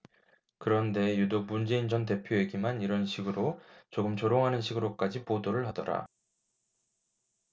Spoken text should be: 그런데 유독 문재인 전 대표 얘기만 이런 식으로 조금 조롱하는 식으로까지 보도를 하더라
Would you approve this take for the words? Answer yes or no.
yes